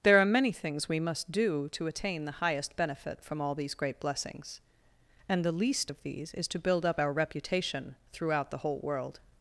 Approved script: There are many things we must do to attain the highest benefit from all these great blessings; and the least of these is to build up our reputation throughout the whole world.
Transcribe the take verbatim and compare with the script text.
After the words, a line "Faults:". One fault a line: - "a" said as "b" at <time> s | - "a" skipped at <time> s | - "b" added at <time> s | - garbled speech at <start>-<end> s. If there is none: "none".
There are many things we must do to attain the highest benefit from all these great blessings; and the least of these is to build up our reputation throughout the whole world.
Faults:
none